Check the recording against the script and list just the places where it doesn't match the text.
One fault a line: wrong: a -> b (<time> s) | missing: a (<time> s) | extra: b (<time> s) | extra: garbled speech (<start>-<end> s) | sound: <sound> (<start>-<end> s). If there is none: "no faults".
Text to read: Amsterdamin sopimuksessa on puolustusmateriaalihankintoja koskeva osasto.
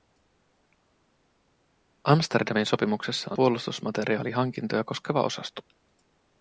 missing: on (3.3 s)